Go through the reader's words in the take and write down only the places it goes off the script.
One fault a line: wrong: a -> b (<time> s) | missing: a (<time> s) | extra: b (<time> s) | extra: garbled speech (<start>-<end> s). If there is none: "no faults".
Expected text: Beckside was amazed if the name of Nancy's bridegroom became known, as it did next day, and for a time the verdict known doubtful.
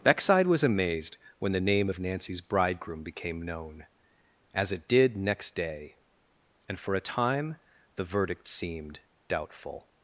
wrong: if -> when (1.4 s)
wrong: known -> seemed (8.5 s)